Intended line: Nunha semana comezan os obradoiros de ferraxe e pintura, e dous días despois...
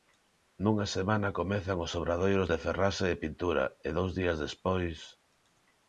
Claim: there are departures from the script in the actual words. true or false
false